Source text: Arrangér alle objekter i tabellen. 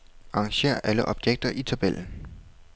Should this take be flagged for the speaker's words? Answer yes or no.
no